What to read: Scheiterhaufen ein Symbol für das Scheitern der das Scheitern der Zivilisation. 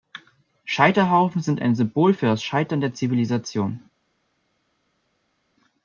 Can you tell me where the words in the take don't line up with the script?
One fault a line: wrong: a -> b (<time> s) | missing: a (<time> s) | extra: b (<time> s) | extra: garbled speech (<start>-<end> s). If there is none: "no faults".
extra: sind (1.4 s)
missing: das Scheitern der (3.0 s)